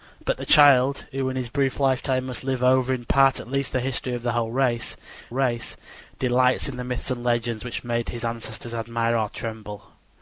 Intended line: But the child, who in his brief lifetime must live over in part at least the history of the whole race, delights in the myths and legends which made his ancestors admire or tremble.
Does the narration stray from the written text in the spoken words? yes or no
yes